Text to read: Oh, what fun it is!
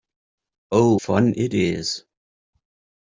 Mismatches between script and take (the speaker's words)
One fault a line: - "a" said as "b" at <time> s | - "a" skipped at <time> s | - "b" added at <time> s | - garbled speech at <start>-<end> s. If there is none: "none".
- "what" skipped at 1.0 s